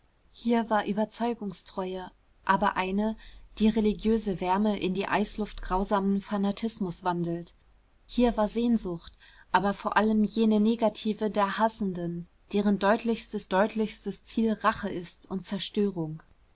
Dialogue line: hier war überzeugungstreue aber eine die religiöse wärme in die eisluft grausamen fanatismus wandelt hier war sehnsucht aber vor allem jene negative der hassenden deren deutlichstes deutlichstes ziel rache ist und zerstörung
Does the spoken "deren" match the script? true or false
true